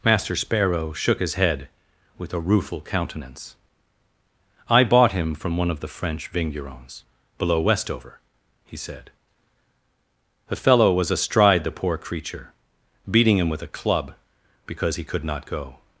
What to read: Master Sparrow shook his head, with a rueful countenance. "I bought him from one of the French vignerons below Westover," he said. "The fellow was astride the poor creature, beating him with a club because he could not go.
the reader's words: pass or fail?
pass